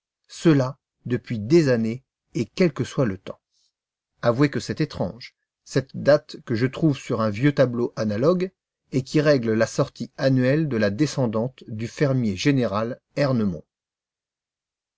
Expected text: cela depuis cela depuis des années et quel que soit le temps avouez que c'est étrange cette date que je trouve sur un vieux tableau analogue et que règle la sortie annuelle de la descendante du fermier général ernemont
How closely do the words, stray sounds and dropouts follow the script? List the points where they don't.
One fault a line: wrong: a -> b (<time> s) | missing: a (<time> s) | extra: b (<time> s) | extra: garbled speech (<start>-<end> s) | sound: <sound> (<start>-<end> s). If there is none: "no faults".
missing: cela depuis (1.4 s)
wrong: que -> qui (9.0 s)